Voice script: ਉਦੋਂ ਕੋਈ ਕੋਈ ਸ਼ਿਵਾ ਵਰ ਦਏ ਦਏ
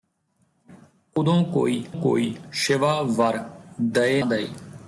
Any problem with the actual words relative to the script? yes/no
no